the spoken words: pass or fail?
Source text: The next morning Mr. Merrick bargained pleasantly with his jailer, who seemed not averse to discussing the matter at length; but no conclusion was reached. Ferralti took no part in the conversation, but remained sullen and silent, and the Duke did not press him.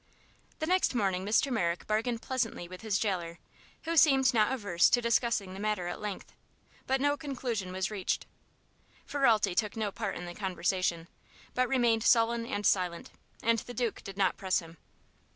pass